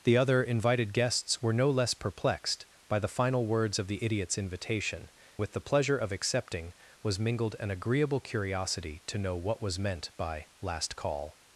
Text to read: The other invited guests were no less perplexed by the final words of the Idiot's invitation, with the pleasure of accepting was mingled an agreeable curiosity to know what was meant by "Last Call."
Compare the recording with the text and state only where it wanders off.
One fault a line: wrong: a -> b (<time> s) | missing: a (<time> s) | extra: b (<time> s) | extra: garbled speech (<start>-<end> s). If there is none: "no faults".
no faults